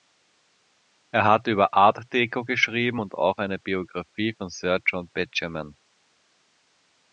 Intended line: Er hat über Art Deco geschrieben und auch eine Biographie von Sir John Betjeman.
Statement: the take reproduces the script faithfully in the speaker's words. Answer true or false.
true